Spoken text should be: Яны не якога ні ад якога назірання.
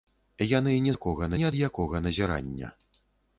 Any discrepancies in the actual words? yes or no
no